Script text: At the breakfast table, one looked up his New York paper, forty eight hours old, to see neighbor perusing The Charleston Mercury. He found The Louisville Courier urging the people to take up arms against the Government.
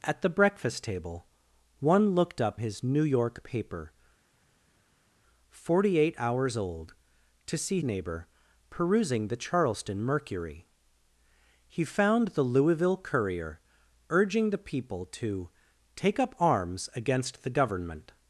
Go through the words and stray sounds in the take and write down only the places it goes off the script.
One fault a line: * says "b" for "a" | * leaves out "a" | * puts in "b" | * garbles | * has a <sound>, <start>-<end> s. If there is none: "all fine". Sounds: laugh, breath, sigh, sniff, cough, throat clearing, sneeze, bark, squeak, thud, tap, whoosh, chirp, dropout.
all fine